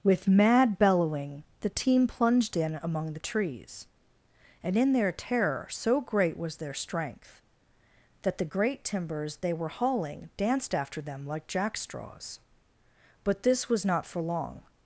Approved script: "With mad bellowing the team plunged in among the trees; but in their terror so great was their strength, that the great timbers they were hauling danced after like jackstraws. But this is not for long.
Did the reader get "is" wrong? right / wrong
wrong